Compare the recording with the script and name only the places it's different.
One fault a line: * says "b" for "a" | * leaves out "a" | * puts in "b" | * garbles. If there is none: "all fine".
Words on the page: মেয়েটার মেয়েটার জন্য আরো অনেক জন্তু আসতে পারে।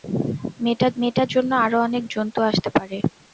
all fine